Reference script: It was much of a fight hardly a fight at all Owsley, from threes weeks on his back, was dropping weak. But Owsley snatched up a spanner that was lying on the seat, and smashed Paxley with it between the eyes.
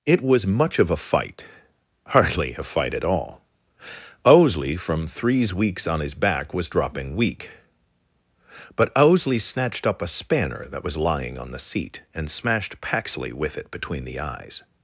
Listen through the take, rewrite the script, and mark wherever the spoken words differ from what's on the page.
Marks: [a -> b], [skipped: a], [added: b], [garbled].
It was much of a fight hardly a fight at all Owsley, from threes weeks on his back, was dropping weak. But Owsley snatched up a spanner that was lying on the seat, and smashed Paxley with it between the eyes.